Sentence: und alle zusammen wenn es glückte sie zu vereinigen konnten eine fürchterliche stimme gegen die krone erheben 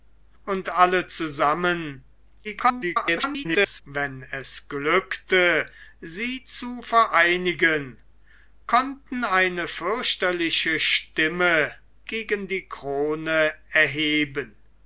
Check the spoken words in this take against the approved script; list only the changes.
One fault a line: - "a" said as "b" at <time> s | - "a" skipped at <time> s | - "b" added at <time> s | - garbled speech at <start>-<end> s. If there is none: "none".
- garbled speech at 2.4-3.8 s